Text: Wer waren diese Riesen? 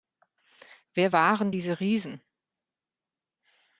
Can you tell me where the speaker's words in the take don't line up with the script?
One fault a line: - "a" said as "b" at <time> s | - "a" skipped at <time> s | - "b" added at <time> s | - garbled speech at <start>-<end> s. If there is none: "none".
none